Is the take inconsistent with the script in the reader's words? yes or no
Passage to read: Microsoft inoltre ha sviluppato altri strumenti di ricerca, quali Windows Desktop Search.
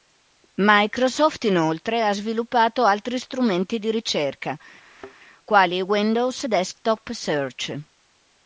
no